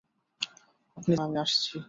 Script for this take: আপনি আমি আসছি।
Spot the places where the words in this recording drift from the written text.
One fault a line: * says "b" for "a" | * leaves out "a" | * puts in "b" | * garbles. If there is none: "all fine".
all fine